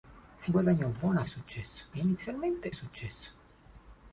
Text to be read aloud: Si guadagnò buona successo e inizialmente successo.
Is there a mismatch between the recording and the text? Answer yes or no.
no